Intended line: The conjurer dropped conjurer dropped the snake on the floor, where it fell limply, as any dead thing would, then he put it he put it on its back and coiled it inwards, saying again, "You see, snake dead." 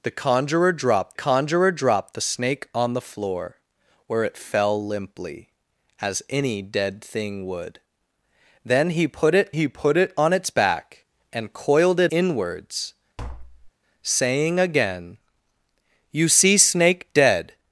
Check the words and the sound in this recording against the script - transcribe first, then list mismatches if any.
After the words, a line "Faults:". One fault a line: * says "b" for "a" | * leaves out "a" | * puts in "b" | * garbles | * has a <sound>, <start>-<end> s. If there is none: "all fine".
The conjurer dropped conjurer dropped the snake on the floor, where it fell limply, as any dead thing would, then he put it he put it on its back and coiled it inwards, saying again, "You see, snake dead."
Faults:
* has a tap, 13.2-13.7 s